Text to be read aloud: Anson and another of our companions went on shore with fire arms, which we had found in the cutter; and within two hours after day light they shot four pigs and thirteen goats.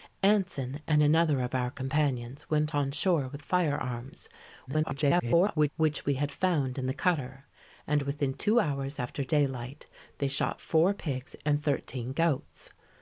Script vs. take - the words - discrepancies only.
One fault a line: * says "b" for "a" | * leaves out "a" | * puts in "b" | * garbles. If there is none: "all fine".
* garbles